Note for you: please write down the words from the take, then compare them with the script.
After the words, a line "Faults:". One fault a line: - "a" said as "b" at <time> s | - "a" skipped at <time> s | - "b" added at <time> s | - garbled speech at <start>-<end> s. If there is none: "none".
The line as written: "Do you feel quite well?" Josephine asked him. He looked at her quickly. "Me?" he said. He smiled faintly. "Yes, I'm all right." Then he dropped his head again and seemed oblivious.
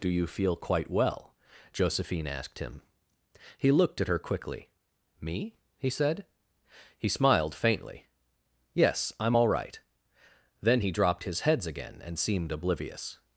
"Do you feel quite well?" Josephine asked him. He looked at her quickly. "Me?" he said. He smiled faintly. "Yes, I'm all right." Then he dropped his heads again and seemed oblivious.
Faults:
- "head" said as "heads" at 11.4 s